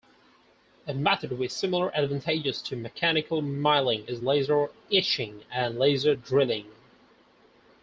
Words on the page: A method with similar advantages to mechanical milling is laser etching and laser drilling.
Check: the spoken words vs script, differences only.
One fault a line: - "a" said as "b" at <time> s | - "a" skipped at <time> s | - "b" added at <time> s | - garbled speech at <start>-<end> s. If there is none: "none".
none